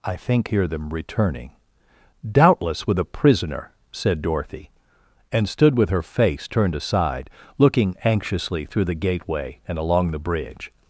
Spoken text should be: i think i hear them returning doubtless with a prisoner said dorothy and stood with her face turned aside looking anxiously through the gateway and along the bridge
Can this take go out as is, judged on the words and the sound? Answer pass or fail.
fail